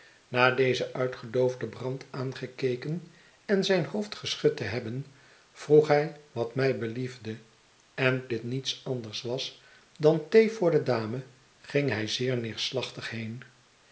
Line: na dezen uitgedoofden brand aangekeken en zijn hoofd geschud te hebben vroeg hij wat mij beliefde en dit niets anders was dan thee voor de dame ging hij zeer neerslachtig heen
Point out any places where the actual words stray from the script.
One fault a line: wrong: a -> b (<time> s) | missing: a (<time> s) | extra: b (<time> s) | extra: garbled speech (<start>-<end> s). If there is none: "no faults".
no faults